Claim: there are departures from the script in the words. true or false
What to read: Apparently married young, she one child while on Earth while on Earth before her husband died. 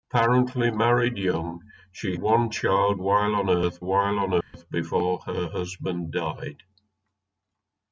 false